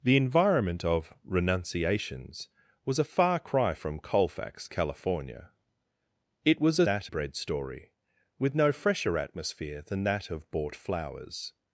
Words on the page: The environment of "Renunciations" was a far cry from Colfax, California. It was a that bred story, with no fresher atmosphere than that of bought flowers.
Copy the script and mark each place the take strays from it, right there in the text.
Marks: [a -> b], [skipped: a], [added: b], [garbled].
The environment of "Renunciations" was a far cry from Colfax, California. It was a that bred story, with no fresher atmosphere than that of bought flowers.